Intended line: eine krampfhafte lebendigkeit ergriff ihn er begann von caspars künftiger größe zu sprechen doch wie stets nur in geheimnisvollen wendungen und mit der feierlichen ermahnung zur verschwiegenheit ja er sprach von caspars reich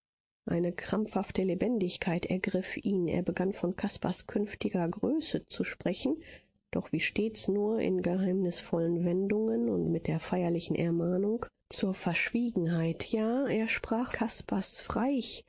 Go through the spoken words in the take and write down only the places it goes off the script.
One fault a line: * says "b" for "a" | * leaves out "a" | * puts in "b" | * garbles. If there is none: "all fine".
* leaves out "von"